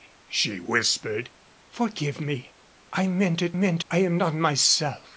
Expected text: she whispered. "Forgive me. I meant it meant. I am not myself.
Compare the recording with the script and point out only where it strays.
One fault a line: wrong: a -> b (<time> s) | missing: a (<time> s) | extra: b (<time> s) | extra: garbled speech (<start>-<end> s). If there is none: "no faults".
no faults